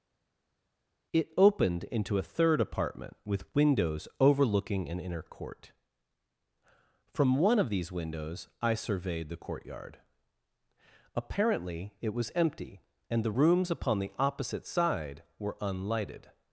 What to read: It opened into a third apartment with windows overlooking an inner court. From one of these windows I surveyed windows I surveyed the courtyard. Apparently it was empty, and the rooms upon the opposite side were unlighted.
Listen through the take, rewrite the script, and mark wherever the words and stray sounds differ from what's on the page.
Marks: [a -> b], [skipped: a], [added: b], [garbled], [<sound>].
It opened into a third apartment with windows overlooking an inner court. From one of these windows I surveyed [skipped: windows I surveyed] the courtyard. Apparently it was empty, and the rooms upon the opposite side were unlighted.